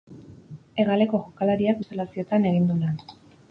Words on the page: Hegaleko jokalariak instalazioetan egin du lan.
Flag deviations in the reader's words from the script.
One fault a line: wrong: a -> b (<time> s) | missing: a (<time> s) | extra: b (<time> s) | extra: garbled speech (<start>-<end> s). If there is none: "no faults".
no faults